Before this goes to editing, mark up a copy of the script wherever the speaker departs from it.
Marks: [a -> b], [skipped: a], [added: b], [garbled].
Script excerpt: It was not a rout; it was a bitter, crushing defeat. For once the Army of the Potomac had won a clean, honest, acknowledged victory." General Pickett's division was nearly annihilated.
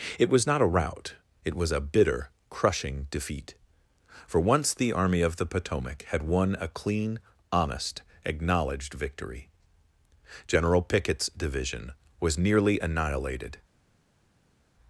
It was not a rout; it was a bitter, crushing defeat. For once the Army of the Potomac had won a clean, honest, acknowledged victory." General Pickett's division was nearly annihilated.